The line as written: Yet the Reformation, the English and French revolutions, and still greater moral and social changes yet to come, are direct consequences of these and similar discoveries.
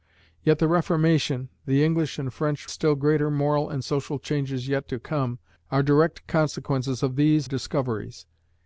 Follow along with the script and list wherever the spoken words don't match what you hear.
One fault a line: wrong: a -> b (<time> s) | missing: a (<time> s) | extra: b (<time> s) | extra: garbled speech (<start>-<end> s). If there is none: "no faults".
missing: revolutions and (2.7 s)
missing: and similar (7.5 s)